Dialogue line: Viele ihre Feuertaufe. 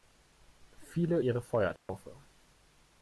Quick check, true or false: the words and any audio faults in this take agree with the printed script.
false